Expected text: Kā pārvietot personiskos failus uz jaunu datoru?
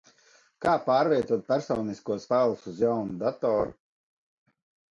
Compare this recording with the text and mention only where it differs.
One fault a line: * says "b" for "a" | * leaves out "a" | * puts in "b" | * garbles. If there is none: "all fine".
all fine